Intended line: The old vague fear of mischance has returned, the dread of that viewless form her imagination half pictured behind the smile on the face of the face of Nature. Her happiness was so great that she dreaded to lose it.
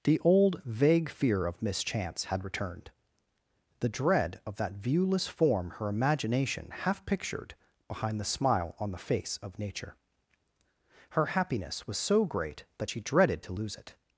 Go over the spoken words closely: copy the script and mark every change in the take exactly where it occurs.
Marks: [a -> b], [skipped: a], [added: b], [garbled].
The old vague fear of mischance [has -> had] returned, the dread of that viewless form her imagination half pictured behind the smile on the face of [skipped: the face of] Nature. Her happiness was so great that she dreaded to lose it.